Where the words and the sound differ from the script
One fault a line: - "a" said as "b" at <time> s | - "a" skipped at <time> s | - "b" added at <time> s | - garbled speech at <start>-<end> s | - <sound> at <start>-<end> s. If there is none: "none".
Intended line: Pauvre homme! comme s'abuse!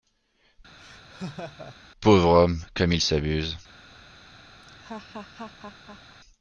- laugh at 0.8-1.8 s
- "il" added at 2.9 s
- laugh at 4.6-6.2 s